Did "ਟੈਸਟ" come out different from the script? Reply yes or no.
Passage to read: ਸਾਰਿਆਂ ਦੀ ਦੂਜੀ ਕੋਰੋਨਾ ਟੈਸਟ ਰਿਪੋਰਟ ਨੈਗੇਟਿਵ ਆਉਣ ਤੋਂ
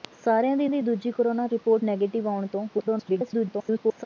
yes